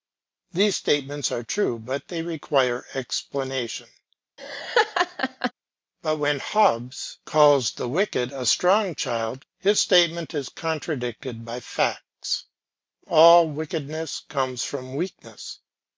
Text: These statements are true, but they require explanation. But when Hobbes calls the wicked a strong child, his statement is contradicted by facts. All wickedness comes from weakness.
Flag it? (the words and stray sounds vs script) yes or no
yes